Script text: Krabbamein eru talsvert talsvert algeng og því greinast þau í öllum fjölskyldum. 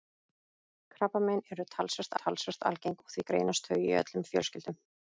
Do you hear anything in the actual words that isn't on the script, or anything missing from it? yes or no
no